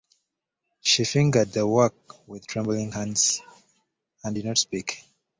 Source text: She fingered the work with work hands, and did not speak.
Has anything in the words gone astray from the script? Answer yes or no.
yes